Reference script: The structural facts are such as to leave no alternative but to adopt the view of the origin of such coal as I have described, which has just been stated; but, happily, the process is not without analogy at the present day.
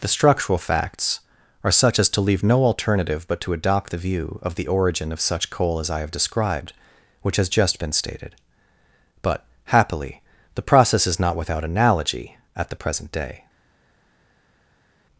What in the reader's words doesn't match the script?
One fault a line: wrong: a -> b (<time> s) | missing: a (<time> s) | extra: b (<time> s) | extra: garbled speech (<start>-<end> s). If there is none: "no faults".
no faults